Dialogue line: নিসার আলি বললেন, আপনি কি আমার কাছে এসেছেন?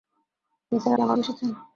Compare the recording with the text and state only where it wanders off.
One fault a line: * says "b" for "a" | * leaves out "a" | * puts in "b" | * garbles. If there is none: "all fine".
* leaves out "আলি বললেন আপনি"
* leaves out "কাছে"